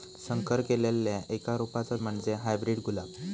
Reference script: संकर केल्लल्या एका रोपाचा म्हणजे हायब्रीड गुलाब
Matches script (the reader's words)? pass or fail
pass